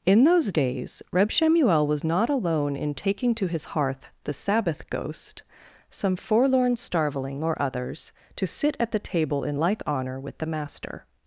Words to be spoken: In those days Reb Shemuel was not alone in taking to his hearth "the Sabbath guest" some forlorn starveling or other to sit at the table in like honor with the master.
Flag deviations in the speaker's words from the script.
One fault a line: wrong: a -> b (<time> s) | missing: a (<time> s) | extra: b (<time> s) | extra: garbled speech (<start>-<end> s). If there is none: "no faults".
wrong: guest -> ghost (4.9 s)
wrong: other -> others (7.6 s)